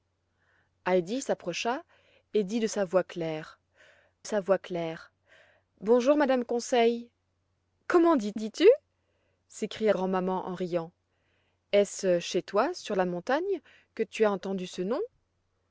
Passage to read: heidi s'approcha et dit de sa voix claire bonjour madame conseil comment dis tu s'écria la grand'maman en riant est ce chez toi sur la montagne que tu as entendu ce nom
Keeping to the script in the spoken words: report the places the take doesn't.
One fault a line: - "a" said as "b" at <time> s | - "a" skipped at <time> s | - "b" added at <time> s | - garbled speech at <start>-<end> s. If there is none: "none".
- "sa voix claire" added at 4.2 s
- "dis" added at 8.3 s
- "la" skipped at 9.9 s